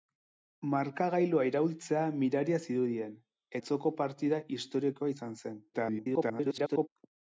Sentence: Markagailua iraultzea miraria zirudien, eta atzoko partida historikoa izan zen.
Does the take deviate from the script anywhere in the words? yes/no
yes